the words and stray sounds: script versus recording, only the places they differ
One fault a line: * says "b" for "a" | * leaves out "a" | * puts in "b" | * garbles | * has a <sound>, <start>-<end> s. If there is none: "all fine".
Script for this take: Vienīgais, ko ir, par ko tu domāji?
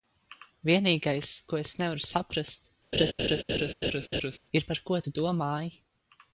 * puts in "es nevaru saprast"
* has a laugh, 2.9-4.4 s